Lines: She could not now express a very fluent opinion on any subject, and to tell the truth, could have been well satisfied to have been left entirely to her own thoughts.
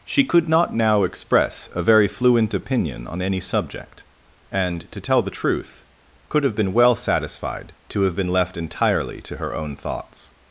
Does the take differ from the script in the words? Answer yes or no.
no